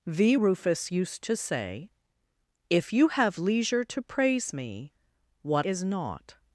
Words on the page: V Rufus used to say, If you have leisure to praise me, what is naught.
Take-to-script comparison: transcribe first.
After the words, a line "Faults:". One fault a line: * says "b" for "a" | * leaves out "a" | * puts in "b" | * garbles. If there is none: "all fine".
V Rufus used to say, If you have leisure to praise me, what is naught.
Faults:
all fine